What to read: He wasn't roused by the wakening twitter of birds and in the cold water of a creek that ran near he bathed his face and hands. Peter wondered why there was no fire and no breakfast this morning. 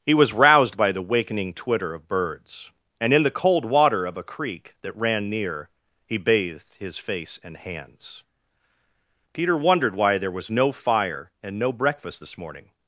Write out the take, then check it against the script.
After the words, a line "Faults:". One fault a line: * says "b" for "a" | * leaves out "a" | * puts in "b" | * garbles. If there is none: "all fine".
He was roused by the wakening twitter of birds and in the cold water of a creek that ran near he bathed his face and hands. Peter wondered why there was no fire and no breakfast this morning.
Faults:
* says "was" for "wasn't"